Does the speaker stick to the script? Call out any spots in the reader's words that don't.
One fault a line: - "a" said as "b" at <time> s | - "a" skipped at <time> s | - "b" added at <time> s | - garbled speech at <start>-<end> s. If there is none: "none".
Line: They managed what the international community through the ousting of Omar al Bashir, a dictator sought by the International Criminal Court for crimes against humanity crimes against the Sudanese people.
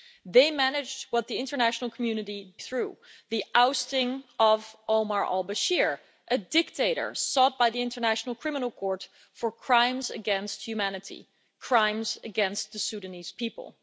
none